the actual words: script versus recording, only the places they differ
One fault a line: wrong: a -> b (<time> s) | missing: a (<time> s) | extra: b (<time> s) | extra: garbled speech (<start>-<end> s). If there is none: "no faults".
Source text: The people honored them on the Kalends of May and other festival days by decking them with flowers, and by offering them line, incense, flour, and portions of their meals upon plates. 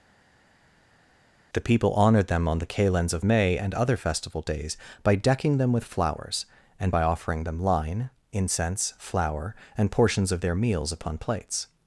no faults